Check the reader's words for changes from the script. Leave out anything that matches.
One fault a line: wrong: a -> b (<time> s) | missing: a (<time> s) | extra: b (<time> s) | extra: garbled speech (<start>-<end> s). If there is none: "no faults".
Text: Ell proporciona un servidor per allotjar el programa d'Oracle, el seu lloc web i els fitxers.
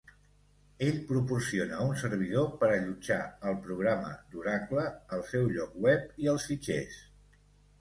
no faults